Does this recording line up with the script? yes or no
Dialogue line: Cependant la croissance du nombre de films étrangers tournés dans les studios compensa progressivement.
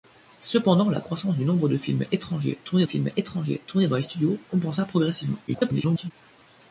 no